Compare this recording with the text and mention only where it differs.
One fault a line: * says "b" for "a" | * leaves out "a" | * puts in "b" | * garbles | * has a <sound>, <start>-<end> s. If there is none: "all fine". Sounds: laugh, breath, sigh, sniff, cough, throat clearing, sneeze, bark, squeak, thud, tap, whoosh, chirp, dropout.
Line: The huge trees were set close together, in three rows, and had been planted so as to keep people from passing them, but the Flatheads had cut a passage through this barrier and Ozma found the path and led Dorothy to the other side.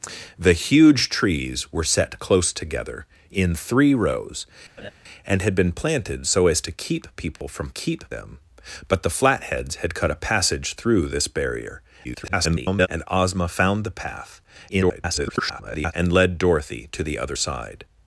* has a laugh, 4.8-4.9 s
* has a dropout, 7.4-7.4 s
* says "keep" for "passing"
* garbles
* garbles